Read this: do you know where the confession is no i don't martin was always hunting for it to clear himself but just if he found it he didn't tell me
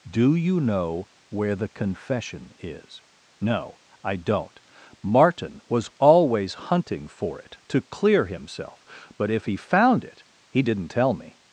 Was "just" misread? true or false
true